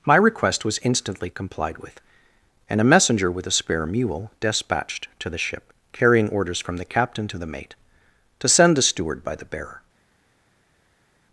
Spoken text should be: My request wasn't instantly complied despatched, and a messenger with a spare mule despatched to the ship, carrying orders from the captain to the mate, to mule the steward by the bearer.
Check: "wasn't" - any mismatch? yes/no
yes